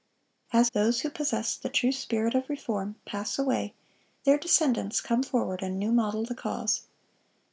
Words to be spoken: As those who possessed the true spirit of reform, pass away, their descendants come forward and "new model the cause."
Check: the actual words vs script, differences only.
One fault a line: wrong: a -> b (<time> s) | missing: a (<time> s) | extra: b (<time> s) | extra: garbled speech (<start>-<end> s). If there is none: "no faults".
no faults